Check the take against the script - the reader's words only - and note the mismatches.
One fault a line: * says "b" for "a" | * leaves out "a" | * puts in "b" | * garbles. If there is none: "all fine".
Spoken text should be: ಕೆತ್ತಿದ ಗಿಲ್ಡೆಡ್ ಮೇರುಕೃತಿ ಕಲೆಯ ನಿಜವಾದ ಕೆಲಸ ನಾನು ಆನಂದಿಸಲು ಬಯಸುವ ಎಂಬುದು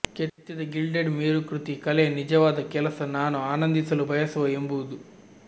all fine